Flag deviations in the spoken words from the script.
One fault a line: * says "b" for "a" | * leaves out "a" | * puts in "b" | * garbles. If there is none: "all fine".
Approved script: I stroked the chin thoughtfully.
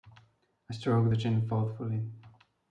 all fine